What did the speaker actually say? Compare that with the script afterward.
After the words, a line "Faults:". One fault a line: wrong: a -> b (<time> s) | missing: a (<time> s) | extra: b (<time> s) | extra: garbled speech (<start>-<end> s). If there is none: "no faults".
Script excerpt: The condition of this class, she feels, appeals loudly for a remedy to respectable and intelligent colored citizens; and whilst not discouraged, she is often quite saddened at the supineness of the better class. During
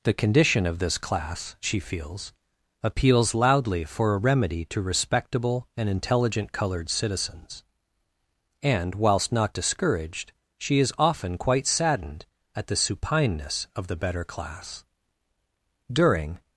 The condition of this class, she feels, appeals loudly for a remedy to respectable and intelligent colored citizens; and whilst not discouraged, she is often quite saddened at the supineness of the better class. During
Faults:
no faults